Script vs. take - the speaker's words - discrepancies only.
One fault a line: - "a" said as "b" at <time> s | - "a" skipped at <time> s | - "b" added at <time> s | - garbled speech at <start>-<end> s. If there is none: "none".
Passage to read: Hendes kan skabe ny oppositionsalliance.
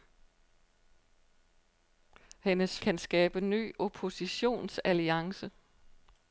none